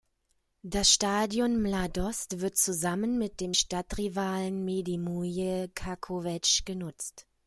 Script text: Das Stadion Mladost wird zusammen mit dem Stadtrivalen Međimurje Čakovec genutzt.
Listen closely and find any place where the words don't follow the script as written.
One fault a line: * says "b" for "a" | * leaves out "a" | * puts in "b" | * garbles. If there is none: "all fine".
all fine